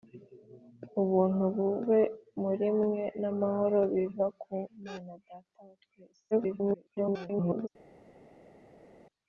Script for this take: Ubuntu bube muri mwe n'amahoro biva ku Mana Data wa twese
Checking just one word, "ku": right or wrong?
right